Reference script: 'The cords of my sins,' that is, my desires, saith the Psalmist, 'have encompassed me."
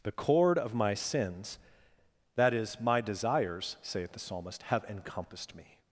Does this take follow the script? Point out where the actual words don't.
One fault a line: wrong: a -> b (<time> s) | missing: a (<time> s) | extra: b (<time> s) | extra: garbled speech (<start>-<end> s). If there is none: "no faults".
wrong: cords -> cord (0.1 s)